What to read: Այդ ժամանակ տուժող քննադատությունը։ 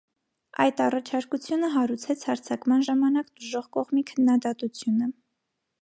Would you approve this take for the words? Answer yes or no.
no